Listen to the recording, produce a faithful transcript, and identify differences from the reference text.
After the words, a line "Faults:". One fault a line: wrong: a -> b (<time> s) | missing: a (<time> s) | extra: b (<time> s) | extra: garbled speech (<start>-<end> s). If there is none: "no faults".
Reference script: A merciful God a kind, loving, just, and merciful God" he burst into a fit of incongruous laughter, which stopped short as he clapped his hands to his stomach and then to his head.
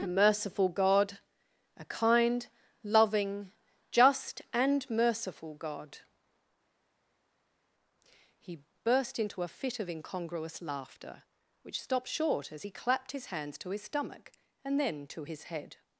A merciful God a kind, loving, just, and merciful God" he burst into a fit of incongruous laughter, which stopped short as he clapped his hands to his stomach and then to his head.
Faults:
no faults